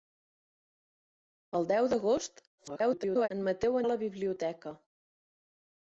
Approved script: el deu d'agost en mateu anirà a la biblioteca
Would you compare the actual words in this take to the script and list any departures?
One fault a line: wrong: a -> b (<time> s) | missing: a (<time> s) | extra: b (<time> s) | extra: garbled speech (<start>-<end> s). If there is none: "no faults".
extra: garbled speech (2.6-3.3 s)
missing: anirà (3.8 s)